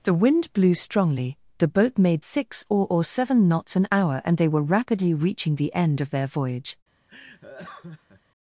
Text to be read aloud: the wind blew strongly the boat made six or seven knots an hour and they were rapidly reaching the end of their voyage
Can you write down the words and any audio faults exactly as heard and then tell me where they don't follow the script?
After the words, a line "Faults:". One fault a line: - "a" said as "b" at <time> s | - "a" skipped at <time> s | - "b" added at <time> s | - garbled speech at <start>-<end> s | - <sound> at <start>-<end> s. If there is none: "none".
the wind blew strongly the boat made six or or seven knots an hour and they were rapidly reaching the end of their voyage
Faults:
- "or" added at 2.9 s
- laugh at 7.1-8.2 s